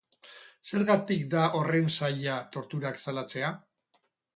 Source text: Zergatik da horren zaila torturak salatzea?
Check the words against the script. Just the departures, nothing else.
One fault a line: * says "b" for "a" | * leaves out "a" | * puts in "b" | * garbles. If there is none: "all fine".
all fine